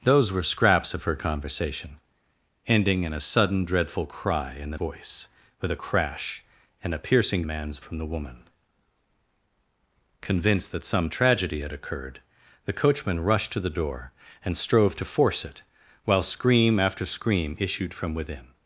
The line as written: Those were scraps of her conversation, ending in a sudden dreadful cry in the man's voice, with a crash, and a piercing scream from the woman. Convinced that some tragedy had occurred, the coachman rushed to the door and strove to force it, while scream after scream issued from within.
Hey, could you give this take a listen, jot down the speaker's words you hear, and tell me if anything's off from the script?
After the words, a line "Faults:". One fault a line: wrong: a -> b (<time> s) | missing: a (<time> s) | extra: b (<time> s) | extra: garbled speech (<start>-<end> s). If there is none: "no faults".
Those were scraps of her conversation, ending in a sudden dreadful cry in the voice, with a crash, and a piercing man's from the woman. Convinced that some tragedy had occurred, the coachman rushed to the door and strove to force it, while scream after scream issued from within.
Faults:
missing: man's (4.8 s)
wrong: scream -> man's (7.4 s)